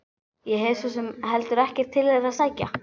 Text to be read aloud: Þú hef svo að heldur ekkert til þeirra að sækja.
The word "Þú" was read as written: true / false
false